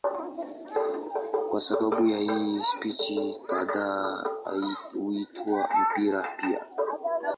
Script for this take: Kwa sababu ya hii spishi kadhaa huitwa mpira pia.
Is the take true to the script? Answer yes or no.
yes